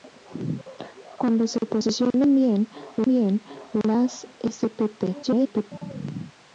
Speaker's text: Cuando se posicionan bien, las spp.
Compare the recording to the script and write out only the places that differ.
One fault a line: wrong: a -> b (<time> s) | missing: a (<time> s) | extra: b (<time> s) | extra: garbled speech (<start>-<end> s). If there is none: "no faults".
extra: bien (3.1 s)
extra: garbled speech (5.2-5.7 s)